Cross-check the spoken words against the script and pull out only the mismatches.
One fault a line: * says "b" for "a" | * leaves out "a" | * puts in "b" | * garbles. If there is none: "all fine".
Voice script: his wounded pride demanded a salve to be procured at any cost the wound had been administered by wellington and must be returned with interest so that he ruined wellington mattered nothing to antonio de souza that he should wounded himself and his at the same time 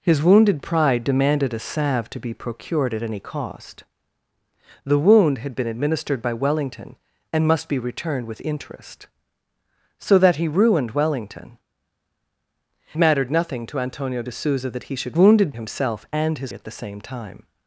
all fine